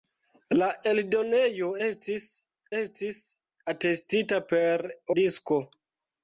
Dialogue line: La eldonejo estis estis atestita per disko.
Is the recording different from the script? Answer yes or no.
no